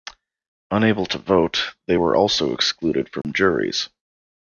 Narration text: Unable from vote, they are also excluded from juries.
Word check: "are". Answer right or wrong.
wrong